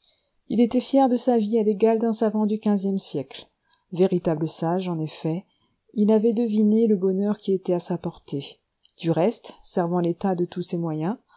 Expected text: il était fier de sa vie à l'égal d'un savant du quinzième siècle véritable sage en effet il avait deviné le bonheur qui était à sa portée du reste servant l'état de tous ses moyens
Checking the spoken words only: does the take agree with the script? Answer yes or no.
yes